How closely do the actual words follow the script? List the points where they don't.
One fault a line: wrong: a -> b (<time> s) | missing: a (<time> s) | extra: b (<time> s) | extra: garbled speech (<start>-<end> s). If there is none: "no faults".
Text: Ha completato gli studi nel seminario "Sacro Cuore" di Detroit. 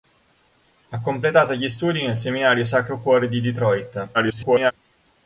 extra: garbled speech (4.1-4.7 s)